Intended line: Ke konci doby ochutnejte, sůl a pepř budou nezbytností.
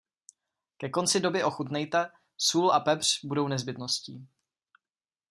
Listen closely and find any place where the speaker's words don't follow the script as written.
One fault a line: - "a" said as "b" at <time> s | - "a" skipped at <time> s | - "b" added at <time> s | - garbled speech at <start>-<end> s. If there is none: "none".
none